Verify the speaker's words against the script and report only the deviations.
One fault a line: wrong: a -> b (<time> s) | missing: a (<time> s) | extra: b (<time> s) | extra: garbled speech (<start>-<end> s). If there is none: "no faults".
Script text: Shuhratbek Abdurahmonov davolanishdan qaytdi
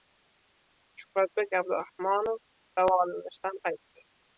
no faults